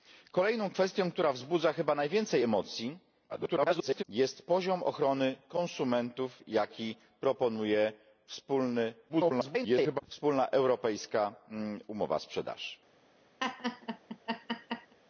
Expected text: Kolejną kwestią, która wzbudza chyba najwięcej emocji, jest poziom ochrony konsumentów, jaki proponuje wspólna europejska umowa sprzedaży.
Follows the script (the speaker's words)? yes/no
no